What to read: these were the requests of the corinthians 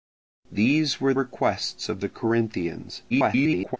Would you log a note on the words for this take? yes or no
yes